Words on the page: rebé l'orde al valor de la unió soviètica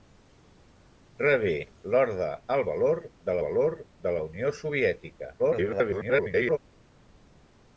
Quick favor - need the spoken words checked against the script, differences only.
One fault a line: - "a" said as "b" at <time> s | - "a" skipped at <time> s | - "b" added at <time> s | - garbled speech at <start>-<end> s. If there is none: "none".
- "valor de" added at 3.5 s
- garbled speech at 5.4-6.6 s